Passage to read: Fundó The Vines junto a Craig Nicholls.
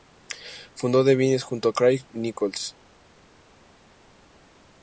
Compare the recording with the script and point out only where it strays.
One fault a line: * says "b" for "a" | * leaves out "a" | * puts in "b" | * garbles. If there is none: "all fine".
all fine